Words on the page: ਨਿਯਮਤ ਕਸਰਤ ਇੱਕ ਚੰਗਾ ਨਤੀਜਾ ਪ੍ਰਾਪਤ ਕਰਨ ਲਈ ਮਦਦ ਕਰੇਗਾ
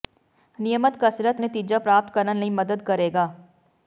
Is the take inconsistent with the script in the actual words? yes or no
yes